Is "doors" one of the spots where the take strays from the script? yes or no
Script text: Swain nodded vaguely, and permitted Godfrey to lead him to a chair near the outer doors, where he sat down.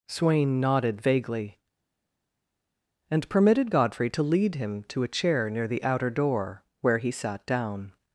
yes